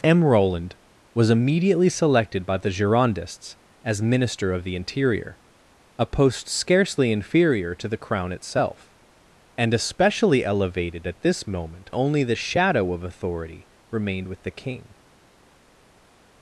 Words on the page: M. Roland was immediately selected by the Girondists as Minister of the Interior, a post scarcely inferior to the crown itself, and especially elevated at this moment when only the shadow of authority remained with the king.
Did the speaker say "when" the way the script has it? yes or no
no